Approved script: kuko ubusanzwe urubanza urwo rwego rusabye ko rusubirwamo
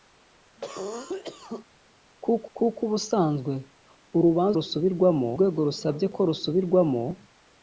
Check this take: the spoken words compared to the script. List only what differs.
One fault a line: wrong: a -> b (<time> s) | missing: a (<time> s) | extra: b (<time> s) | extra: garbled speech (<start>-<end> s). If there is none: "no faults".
extra: kuko (2.6 s)
wrong: urwo -> rusubirwamo (4.6 s)